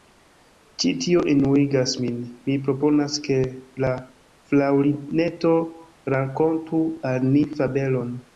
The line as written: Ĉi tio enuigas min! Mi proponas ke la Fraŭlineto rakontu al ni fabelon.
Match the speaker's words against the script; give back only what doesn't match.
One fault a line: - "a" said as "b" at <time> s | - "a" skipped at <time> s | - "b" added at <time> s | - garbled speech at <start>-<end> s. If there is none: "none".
none